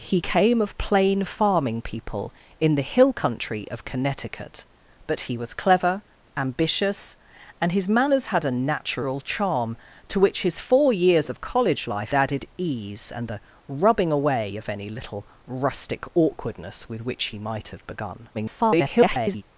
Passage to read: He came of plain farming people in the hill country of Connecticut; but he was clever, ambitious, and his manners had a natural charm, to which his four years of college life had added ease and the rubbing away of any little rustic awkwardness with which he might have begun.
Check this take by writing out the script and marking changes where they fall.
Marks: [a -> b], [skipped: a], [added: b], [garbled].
He came of plain farming people in the hill country of Connecticut; but he was clever, ambitious, and his manners had a natural charm, to which his four years of college life [skipped: had] added ease and the rubbing away of any little rustic awkwardness with which he might have begun. [garbled]